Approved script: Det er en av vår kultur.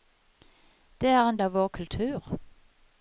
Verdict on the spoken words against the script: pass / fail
pass